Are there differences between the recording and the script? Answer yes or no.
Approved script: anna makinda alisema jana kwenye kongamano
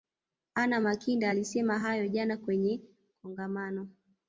yes